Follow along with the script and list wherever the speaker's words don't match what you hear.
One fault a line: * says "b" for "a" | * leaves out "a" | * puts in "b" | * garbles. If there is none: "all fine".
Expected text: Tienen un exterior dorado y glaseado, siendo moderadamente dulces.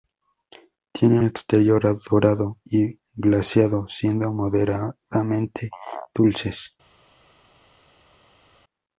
* leaves out "un"